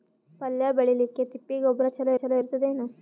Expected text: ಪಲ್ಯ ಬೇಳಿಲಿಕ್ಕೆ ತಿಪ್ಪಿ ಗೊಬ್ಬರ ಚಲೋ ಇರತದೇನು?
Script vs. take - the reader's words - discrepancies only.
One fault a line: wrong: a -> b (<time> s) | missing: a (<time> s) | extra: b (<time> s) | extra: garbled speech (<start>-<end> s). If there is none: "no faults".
extra: ಚಲೋ (2.1 s)